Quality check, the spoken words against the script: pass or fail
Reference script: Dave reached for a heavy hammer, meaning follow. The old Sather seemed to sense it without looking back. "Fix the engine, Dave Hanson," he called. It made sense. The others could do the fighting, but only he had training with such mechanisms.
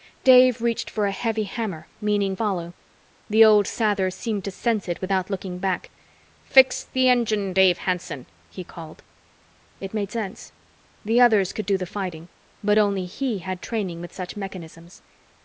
pass